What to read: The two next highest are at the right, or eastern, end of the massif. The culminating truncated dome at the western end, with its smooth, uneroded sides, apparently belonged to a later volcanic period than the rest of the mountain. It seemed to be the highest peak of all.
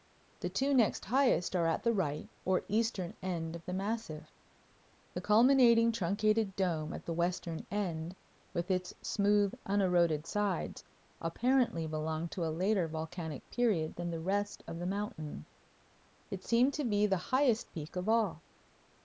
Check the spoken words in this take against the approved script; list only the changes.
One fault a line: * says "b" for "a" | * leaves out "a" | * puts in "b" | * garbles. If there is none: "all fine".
all fine